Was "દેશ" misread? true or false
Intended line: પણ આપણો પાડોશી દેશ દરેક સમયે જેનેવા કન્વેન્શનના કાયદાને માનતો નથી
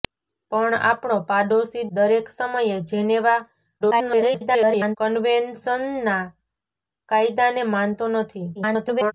true